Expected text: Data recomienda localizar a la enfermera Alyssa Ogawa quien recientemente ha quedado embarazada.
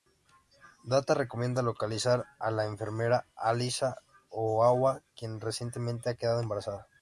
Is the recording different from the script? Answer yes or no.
no